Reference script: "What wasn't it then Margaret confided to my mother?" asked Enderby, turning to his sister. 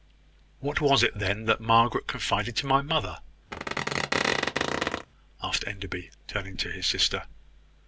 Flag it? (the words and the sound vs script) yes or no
yes